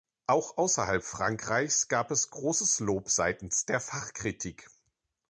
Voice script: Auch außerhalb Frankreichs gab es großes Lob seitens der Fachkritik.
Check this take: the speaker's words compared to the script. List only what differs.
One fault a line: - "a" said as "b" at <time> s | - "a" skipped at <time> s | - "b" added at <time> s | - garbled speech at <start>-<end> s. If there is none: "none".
none